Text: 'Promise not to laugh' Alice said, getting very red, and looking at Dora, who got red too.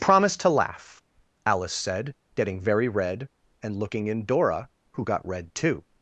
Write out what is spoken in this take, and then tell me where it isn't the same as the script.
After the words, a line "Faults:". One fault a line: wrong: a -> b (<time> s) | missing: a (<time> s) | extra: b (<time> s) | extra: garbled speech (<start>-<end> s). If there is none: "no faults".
'Promise to laugh' Alice said, getting very red, and looking in Dora, who got red too.
Faults:
missing: not (0.3 s)
wrong: at -> in (4.1 s)